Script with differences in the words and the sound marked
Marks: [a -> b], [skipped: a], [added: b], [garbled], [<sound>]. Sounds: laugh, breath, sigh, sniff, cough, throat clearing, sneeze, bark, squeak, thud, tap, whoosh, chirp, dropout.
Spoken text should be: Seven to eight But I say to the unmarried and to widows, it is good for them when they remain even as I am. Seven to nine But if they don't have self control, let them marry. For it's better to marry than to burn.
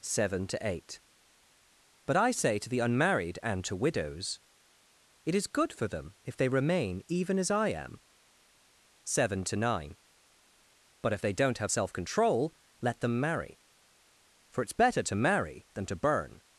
Seven to eight But I say to the unmarried and to widows, it is good for them [when -> if] they remain even as I am. Seven to nine But if they don't have self control, let them marry. For it's better to marry than to burn.